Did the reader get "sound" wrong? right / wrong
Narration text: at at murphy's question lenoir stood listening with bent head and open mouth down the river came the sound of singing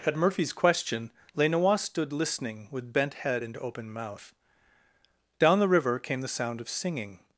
right